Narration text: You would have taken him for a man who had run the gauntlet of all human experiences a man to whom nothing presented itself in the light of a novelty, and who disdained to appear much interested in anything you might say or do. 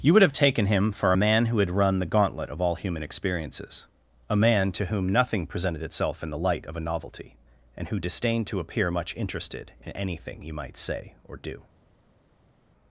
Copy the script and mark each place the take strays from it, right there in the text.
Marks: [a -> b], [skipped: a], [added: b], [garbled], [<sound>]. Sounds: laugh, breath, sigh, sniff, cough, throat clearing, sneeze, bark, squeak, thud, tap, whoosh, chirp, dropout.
You would have taken him for a man who had run the gauntlet of all human experiences a man to whom nothing presented itself in the light of a novelty, and who disdained to appear much interested in anything you might say or do.